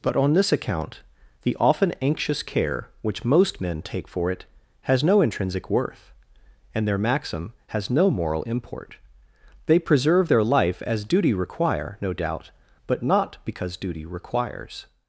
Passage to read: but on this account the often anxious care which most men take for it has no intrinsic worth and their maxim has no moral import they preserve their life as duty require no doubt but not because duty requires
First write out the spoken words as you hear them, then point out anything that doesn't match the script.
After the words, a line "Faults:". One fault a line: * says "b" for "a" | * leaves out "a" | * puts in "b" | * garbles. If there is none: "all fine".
but on this account the often anxious care which most men take for it has no intrinsic worth and their maxim has no moral import they preserve their life as duty require no doubt but not because duty requires
Faults:
all fine